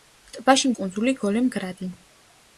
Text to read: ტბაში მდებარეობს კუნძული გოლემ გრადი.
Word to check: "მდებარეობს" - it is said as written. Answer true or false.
false